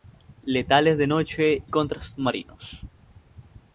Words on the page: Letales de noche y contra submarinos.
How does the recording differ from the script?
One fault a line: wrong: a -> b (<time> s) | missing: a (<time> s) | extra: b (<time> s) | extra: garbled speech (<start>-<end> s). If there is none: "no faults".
missing: y (1.6 s)